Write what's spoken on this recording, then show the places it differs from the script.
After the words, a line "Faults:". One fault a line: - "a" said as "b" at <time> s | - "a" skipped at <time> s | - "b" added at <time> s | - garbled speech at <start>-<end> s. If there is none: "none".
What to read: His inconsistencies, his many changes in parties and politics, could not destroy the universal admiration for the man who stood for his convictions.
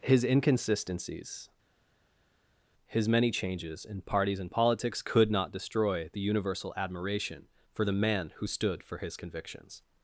His inconsistencies, his many changes in parties and politics, could not destroy the universal admiration for the man who stood for his convictions.
Faults:
none